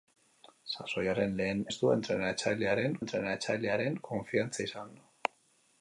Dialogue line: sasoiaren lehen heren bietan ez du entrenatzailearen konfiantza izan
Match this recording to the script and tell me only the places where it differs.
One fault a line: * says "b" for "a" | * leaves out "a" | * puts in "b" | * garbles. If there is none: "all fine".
* leaves out "heren bietan"
* puts in "entrenatzailearen"